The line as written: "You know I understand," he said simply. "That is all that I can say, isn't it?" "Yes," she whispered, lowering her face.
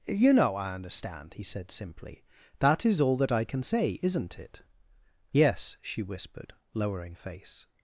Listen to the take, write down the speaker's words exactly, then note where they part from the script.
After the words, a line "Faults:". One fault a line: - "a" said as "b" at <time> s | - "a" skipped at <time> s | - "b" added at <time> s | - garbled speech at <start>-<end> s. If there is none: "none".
"You know I understand," he said simply. "That is all that I can say, isn't it?" "Yes," she whispered, lowering face.
Faults:
- "her" skipped at 7.1 s